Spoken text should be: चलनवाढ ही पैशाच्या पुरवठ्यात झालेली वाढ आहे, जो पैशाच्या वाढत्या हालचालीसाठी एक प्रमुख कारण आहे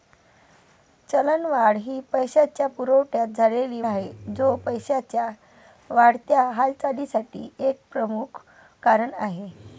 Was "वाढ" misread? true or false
true